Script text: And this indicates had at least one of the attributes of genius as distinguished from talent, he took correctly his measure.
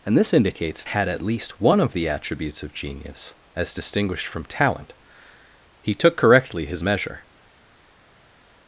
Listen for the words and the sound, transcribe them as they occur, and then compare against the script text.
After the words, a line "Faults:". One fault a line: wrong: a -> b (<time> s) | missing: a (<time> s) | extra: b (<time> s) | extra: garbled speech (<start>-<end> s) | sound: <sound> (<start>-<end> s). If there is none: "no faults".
And this indicates had at least one of the attributes of genius as distinguished from talent, he took correctly his measure.
Faults:
no faults